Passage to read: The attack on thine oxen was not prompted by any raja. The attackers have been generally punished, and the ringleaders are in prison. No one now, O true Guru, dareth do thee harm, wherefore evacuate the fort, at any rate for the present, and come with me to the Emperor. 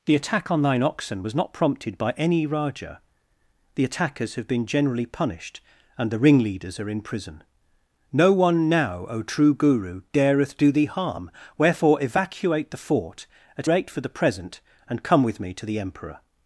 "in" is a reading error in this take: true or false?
false